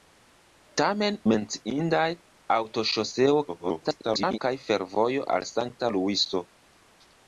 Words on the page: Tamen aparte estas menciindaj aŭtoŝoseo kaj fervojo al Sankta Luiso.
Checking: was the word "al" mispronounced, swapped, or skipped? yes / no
no